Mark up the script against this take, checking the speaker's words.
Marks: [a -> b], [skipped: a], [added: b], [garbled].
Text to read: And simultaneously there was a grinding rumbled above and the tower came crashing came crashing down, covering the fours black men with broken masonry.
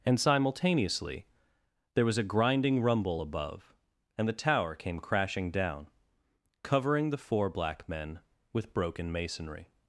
And simultaneously there was a grinding [rumbled -> rumble] above and the tower came crashing [skipped: came crashing] down, covering the [fours -> four] black men with broken masonry.